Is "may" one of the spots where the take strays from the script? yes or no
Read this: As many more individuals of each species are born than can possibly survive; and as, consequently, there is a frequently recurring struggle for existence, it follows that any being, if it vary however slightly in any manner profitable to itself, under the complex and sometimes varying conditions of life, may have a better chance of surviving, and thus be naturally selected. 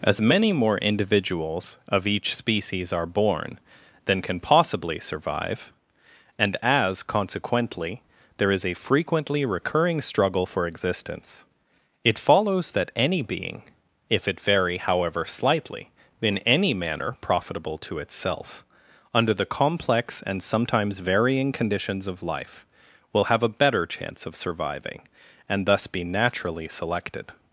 yes